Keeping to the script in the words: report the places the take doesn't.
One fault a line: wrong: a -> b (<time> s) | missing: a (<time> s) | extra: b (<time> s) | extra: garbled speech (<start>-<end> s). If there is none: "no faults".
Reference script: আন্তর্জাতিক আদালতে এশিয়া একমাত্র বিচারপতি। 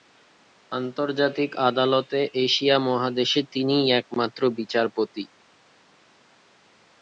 extra: মহাদেশে তিনিই (2.9 s)